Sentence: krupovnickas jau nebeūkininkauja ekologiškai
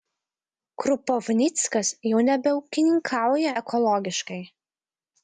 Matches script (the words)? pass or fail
pass